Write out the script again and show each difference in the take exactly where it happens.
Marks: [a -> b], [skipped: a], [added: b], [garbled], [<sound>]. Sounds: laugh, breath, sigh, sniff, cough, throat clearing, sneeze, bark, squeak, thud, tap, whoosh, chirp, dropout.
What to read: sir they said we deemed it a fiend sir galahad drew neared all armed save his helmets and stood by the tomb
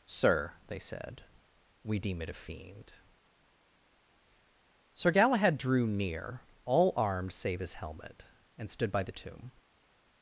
sir they said we [deemed -> deem] it a fiend sir galahad drew [neared -> near] all armed save his [helmets -> helmet] and stood by the tomb